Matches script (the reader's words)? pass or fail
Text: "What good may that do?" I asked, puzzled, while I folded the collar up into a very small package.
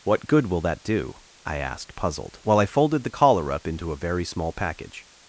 fail